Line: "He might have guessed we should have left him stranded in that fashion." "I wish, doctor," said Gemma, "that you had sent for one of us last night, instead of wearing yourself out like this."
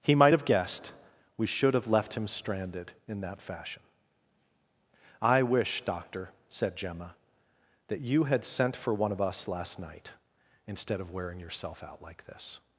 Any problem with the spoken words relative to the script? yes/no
no